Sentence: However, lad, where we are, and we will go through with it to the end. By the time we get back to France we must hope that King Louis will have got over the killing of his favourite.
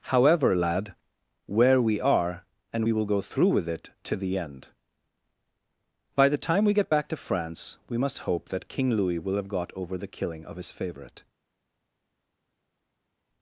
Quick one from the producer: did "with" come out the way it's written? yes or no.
yes